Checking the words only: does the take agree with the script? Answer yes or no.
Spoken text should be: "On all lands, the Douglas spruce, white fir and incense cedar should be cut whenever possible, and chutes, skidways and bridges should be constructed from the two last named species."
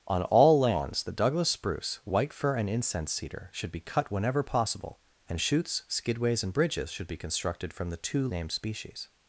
no